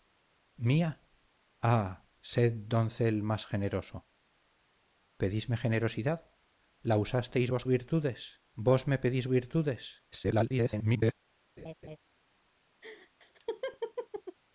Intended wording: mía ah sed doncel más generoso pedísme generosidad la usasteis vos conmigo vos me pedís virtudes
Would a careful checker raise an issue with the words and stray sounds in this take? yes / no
yes